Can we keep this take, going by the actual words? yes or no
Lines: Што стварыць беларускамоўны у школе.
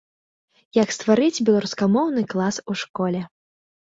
no